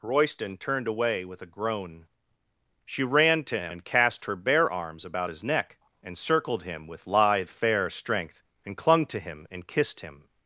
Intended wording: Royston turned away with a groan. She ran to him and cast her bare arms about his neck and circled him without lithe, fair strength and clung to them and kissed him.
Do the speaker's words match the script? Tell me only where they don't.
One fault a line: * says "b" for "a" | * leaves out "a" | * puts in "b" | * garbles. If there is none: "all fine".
* says "with" for "without"
* says "him" for "them"